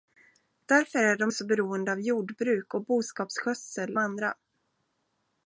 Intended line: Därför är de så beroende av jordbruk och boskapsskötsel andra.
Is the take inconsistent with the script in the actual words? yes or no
no